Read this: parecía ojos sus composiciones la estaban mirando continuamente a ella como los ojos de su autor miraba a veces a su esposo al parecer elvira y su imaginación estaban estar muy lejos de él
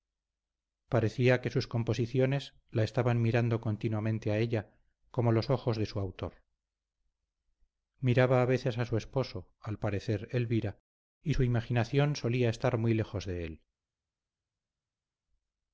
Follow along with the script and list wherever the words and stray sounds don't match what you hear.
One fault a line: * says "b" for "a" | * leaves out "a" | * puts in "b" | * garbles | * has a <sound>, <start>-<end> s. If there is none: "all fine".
* says "que" for "ojos"
* says "solía" for "estaban"